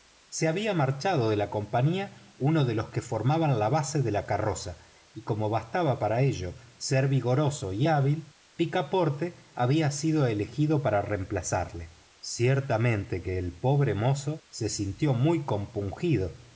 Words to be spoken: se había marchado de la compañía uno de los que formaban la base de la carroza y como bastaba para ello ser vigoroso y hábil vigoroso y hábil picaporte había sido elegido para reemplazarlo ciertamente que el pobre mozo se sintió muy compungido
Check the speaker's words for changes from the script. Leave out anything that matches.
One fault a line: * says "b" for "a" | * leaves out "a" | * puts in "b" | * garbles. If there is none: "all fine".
* leaves out "vigoroso y hábil"